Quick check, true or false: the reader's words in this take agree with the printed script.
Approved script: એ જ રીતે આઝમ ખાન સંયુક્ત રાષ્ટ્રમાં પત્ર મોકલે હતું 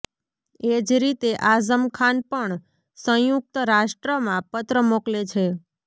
false